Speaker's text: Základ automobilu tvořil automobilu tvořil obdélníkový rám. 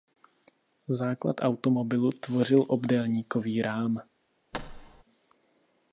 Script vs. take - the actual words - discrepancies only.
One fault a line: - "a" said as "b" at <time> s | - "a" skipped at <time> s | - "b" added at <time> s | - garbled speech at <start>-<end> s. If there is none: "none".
- "automobilu tvořil" skipped at 2.6 s